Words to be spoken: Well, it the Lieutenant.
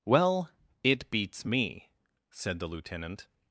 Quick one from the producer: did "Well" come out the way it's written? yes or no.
yes